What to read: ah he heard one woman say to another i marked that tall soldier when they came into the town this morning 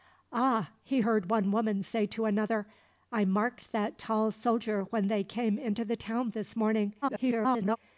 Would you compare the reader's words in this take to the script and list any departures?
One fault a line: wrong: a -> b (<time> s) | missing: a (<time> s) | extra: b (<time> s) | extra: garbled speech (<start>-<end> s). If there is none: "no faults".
extra: garbled speech (7.0-7.8 s)